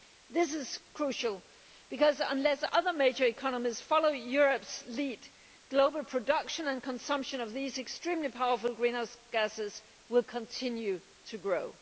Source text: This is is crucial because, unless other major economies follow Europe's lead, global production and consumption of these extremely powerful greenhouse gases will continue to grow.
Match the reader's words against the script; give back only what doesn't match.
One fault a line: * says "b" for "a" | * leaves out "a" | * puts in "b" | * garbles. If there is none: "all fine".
* leaves out "is"